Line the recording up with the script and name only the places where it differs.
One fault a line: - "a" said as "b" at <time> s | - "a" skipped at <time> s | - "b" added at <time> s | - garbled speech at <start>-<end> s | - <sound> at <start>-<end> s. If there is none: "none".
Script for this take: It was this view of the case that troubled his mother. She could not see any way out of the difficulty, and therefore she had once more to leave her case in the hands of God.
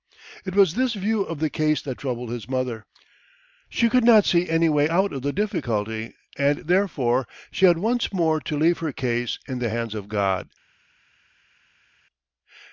none